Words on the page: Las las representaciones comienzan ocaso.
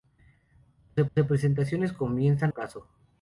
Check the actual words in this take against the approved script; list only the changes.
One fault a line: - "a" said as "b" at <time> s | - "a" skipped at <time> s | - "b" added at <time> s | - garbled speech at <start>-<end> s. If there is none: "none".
none